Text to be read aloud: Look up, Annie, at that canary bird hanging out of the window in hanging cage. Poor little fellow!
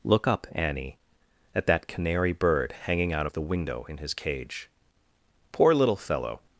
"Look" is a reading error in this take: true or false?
false